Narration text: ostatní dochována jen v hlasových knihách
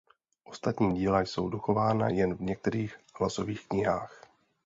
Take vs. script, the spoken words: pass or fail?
fail